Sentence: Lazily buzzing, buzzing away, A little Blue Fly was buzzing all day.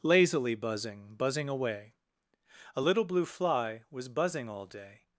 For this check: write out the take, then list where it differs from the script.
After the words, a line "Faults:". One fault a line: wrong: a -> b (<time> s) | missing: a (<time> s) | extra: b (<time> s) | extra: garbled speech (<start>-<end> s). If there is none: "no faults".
Lazily buzzing, buzzing away, A little Blue Fly was buzzing all day.
Faults:
no faults